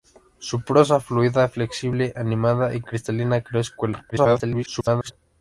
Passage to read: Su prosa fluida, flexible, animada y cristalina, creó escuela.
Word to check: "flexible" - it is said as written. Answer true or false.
true